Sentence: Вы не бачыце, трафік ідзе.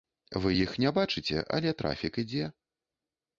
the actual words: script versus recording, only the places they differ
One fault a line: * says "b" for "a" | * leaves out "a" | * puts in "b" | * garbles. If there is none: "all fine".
* puts in "іх"
* puts in "але"